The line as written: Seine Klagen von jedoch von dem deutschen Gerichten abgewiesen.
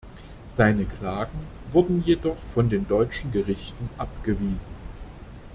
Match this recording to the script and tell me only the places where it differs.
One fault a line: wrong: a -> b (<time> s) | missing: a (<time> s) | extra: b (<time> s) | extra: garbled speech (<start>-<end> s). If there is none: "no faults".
wrong: von -> wurden (1.7 s)
wrong: dem -> den (2.7 s)